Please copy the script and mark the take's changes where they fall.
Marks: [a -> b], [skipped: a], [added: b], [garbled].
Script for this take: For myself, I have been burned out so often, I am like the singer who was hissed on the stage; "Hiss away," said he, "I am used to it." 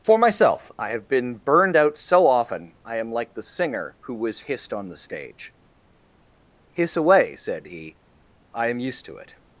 For myself, I have been burned out so often, I am like the singer who was hissed on the stage; "Hiss away," said he, "I am used to it."